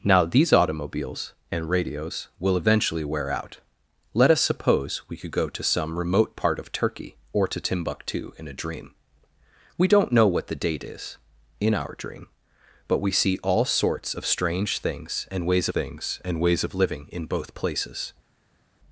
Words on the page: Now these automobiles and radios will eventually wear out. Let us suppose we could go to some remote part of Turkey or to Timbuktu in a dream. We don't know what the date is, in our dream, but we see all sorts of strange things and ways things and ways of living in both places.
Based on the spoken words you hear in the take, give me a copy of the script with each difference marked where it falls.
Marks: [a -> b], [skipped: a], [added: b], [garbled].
Now these automobiles and radios will eventually wear out. Let us suppose we could go to some remote part of Turkey or to Timbuktu in a dream. We don't know what the date is, in our dream, but we see all sorts of strange things and ways things and ways of living in both places.